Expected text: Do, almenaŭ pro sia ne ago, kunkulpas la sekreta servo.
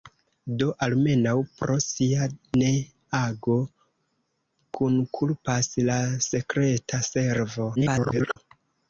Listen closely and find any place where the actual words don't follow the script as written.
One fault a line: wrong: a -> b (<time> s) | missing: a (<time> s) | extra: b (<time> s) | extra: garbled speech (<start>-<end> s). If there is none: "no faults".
extra: garbled speech (7.8-8.4 s)